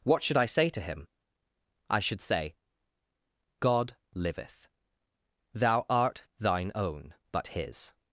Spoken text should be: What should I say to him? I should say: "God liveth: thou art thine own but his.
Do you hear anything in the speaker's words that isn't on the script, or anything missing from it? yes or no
no